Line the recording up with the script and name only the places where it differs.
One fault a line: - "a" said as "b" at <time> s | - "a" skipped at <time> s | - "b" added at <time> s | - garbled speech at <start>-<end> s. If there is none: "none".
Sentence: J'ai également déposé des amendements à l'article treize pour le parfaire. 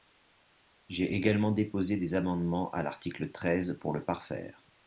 none